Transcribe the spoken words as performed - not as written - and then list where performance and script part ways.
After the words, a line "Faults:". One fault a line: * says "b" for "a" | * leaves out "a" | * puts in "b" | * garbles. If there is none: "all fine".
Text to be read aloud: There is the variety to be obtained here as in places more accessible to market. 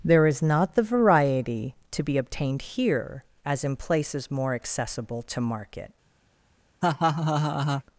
There is not the variety to be obtained here as in places more accessible to market.
Faults:
* puts in "not"